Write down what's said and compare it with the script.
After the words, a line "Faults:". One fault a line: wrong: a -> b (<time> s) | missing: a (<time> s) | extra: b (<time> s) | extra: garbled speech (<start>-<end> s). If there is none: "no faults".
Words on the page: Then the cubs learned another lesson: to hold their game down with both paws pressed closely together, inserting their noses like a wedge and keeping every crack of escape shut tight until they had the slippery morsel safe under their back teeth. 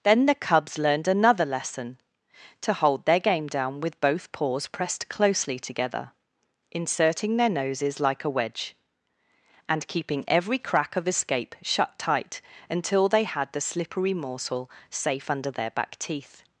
Then the cubs learned another lesson: to hold their game down with both paws pressed closely together, inserting their noses like a wedge and keeping every crack of escape shut tight until they had the slippery morsel safe under their back teeth.
Faults:
no faults